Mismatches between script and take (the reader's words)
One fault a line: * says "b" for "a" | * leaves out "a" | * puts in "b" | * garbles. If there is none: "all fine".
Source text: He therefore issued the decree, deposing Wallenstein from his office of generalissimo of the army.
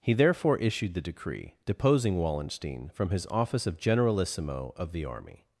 all fine